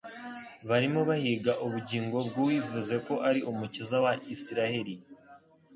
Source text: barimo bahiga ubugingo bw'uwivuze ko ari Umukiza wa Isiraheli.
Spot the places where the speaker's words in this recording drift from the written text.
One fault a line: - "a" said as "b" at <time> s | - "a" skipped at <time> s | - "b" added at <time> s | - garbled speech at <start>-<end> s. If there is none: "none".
none